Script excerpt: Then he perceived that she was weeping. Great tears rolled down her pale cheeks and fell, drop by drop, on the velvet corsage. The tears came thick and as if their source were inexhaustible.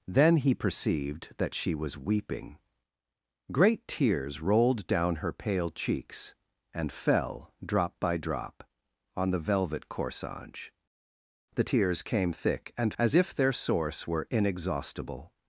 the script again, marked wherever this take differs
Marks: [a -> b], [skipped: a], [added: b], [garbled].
Then he perceived that she was weeping. Great tears rolled down her pale cheeks and fell, drop by drop, on the velvet corsage. The tears came thick and as if their source were inexhaustible.